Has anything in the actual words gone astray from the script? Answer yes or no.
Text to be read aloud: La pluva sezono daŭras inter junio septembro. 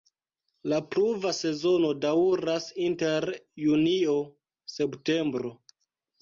no